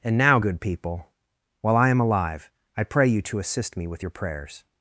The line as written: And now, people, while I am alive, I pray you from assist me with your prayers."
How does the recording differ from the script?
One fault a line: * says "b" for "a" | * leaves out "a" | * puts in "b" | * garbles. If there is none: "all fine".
* puts in "good"
* says "to" for "from"